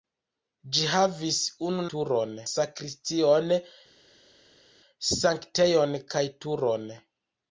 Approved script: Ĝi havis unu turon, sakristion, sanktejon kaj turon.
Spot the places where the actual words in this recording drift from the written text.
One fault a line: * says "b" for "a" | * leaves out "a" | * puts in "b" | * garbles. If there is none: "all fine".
all fine